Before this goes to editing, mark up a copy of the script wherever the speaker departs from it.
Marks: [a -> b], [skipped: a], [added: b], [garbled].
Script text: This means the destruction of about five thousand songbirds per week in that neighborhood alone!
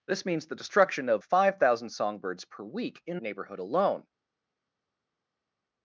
This means the destruction of [skipped: about] five thousand songbirds per week in [skipped: that] neighborhood alone!